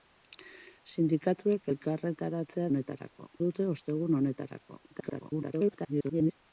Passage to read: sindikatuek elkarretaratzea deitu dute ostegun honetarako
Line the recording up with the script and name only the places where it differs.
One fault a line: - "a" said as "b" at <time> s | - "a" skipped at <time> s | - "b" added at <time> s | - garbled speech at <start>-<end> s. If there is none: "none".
- "deitu" said as "honetarako" at 2.7 s
- garbled speech at 4.9-6.3 s